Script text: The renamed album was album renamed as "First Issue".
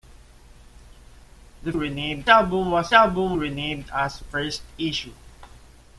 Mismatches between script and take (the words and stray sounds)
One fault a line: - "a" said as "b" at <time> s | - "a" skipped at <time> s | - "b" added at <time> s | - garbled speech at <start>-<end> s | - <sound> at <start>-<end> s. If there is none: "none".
none